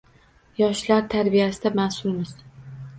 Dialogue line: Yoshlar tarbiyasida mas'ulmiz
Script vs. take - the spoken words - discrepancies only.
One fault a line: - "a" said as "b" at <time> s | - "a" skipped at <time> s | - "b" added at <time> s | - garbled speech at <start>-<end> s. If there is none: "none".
none